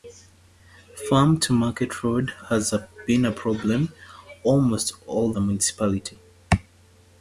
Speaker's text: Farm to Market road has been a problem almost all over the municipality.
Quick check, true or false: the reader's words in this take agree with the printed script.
false